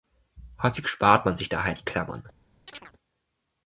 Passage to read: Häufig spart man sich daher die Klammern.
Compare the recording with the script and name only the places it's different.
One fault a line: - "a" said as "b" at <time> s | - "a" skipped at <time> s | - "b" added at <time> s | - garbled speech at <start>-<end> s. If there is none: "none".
none